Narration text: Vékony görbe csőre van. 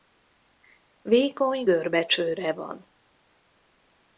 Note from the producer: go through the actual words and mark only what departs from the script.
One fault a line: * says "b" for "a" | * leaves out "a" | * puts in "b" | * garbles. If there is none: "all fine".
all fine